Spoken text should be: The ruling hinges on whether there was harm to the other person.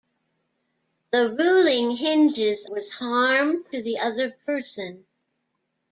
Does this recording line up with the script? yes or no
no